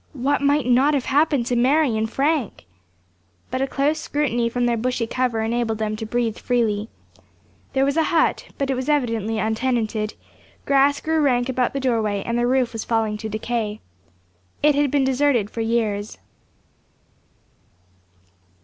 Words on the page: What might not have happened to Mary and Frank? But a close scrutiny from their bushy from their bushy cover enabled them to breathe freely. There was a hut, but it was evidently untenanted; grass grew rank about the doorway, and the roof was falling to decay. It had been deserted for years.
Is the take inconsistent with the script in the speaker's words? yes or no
yes